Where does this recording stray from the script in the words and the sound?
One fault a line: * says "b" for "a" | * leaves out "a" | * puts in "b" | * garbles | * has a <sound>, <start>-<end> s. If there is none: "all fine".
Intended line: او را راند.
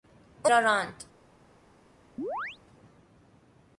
* has a chirp, 2.2-2.6 s